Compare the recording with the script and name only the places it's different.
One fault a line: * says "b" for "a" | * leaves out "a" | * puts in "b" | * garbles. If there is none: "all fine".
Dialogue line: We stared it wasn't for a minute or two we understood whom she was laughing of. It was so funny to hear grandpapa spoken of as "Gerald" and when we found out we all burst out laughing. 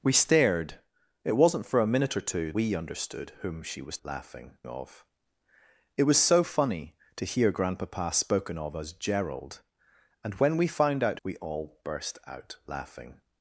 all fine